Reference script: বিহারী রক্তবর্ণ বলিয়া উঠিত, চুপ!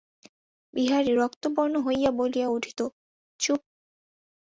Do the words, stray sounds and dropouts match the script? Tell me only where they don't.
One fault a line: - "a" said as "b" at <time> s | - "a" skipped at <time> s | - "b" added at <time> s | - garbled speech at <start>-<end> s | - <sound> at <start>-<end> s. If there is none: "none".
- "হইয়া" added at 1.8 s